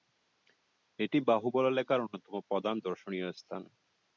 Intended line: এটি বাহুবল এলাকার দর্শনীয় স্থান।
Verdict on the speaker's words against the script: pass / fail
fail